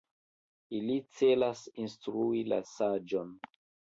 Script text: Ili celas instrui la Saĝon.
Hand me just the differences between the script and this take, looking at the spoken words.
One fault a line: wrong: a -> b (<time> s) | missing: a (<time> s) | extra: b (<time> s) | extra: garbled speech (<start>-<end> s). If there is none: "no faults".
no faults